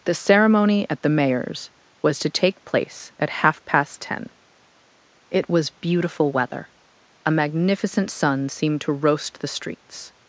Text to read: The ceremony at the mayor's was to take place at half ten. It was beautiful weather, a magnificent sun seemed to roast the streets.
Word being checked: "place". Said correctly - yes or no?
yes